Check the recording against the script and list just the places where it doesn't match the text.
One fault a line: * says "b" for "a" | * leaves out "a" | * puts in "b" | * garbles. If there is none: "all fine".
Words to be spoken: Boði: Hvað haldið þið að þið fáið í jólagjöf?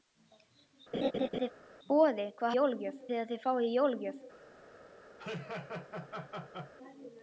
* says "jólagjöf" for "haldið"